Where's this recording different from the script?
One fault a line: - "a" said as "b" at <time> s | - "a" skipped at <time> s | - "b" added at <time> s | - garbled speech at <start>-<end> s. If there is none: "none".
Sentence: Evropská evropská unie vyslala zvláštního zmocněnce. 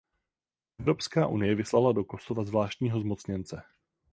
- "evropská" skipped at 1.3 s
- "do Kosova" added at 1.9 s